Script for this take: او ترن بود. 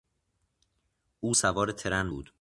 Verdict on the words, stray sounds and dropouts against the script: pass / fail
fail